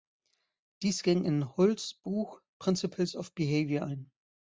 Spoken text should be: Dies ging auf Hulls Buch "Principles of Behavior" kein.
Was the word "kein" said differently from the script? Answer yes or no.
yes